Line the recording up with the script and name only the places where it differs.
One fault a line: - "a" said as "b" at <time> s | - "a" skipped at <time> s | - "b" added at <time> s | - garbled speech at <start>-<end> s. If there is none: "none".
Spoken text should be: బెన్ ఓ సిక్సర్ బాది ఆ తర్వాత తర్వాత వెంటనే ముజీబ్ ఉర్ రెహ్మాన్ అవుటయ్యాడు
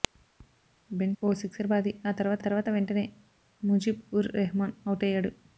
none